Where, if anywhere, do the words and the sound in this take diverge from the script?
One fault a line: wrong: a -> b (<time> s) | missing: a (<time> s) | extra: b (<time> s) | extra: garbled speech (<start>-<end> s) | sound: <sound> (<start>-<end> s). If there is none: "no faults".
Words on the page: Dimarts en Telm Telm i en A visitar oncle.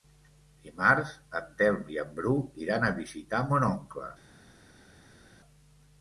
missing: Telm (1.9 s)
extra: Bru iran (2.2 s)
extra: mon (3.5 s)